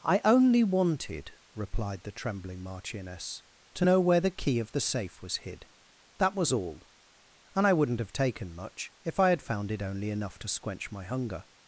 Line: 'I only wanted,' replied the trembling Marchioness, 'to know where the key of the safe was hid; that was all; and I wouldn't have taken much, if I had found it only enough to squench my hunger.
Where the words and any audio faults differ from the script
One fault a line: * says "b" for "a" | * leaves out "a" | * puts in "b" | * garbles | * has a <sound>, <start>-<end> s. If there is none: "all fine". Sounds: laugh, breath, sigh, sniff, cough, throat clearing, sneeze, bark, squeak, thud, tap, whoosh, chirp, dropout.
all fine